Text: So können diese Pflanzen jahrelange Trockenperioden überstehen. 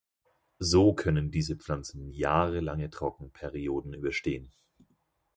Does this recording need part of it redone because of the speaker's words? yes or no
no